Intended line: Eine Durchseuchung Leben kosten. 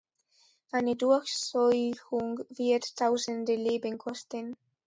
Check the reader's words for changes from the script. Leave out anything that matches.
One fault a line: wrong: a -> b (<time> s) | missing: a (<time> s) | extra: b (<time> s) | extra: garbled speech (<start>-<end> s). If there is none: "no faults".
extra: wird tausende (2.5 s)